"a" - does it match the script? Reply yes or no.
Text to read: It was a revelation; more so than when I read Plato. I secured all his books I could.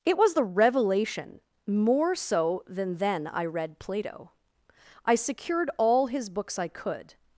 no